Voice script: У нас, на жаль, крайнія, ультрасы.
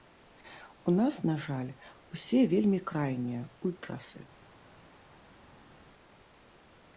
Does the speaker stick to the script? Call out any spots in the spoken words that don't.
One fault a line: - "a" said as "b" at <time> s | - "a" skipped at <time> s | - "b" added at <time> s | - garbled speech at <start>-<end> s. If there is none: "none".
- "усе вельмі" added at 2.1 s